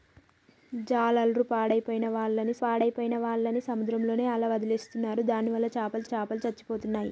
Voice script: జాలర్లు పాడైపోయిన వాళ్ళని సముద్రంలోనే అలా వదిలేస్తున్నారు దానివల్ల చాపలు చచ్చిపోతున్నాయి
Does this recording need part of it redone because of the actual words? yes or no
yes